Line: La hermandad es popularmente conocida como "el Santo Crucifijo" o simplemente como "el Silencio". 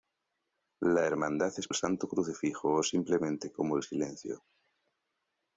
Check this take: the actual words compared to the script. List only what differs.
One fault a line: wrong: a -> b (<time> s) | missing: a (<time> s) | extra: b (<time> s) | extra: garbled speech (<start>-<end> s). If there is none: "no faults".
missing: popularmente conocida como (1.7 s)